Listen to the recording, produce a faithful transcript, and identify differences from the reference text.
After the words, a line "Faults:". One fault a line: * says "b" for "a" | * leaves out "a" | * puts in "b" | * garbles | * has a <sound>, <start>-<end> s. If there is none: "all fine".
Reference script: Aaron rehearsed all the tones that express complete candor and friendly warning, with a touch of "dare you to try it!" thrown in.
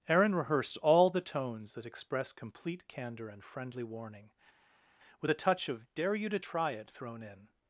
Aaron rehearsed all the tones that express complete candor and friendly warning, with a touch of "dare you to try it!" thrown in.
Faults:
all fine